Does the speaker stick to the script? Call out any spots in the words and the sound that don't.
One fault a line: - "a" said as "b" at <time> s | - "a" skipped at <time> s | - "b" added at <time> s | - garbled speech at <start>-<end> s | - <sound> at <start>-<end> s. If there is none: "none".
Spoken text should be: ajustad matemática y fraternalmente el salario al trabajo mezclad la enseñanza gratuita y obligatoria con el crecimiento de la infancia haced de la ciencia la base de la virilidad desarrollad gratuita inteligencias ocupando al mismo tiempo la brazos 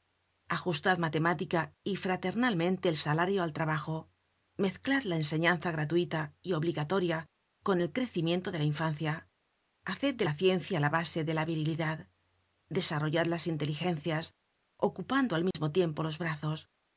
- "gratuita" said as "las" at 13.3 s
- dropout at 15.5-15.5 s
- "la" said as "los" at 16.0 s